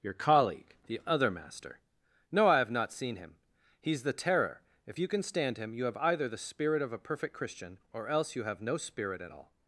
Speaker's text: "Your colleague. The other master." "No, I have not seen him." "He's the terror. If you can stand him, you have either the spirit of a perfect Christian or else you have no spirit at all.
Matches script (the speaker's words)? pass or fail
pass